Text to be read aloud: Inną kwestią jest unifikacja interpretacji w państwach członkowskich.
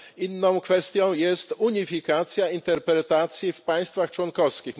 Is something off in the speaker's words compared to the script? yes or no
no